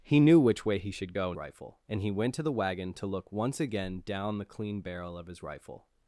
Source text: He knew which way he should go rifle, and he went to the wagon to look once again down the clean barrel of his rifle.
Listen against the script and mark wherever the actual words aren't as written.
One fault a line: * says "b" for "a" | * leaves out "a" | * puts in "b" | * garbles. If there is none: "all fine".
all fine